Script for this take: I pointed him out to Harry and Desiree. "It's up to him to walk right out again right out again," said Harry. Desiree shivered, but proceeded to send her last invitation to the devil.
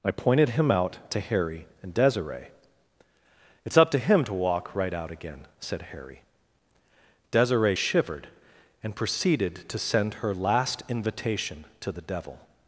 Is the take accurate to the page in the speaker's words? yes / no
no